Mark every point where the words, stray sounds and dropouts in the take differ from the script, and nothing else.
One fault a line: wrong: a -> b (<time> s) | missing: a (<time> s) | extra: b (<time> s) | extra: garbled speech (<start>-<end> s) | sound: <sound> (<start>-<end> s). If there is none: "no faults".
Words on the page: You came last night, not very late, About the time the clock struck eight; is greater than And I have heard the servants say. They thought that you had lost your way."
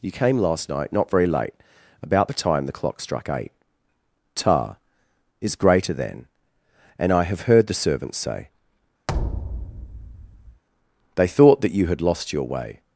extra: ta (4.3 s)
sound: thud (9.1-10.6 s)